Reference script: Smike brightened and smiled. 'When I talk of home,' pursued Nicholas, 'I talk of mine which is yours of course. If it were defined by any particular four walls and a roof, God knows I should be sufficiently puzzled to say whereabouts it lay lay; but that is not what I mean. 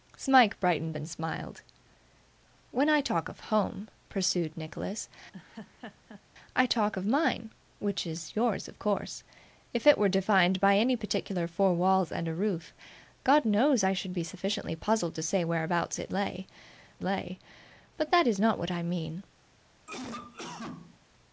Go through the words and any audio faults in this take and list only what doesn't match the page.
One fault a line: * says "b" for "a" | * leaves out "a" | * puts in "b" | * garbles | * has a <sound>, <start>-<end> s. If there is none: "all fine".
* has a laugh, 5.3-6.2 s
* has a cough, 19.9-21.0 s